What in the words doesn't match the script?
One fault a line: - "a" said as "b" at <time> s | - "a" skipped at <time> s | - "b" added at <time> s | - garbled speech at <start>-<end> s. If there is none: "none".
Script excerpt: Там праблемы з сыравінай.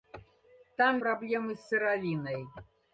none